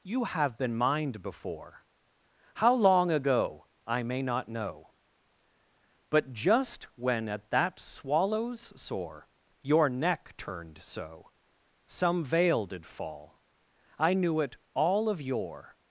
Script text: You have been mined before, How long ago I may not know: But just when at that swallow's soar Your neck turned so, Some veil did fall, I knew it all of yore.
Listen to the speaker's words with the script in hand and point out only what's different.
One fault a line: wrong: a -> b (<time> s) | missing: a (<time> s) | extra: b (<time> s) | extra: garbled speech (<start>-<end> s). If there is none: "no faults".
no faults